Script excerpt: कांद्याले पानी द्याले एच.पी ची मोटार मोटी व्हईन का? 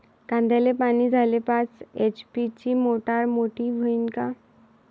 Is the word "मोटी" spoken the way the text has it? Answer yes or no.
yes